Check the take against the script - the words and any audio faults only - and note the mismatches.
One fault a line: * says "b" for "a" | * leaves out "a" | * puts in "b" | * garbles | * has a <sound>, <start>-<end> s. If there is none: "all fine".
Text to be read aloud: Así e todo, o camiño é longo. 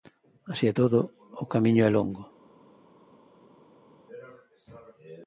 all fine